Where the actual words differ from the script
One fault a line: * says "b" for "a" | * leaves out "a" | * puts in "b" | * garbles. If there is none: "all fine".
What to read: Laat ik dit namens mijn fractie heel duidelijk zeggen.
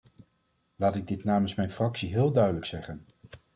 all fine